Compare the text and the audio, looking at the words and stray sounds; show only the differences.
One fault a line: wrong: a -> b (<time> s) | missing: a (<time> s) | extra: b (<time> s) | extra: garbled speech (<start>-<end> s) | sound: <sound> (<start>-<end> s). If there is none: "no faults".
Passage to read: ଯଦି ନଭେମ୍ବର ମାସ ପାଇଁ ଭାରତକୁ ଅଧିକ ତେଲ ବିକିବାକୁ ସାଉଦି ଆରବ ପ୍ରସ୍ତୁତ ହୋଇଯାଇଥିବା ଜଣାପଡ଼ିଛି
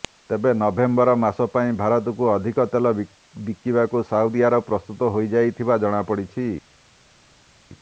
wrong: ଯଦି -> ତେବେ (0.3 s)